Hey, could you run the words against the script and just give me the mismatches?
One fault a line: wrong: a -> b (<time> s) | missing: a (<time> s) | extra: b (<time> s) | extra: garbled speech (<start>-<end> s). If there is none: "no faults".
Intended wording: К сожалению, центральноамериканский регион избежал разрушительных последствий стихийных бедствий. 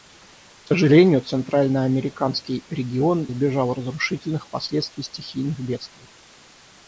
no faults